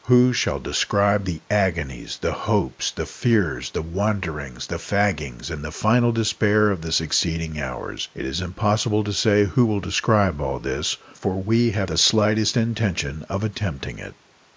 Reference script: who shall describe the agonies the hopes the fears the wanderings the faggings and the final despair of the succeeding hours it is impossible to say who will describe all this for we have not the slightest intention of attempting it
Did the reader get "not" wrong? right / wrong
wrong